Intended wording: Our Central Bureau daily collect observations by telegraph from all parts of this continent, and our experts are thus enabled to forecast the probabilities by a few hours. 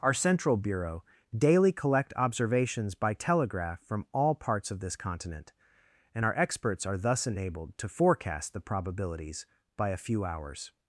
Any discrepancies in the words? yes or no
no